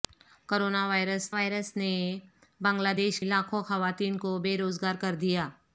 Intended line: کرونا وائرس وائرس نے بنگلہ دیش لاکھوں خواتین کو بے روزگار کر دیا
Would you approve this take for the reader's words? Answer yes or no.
yes